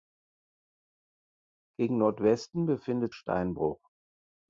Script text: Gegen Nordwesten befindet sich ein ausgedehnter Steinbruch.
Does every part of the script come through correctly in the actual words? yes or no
no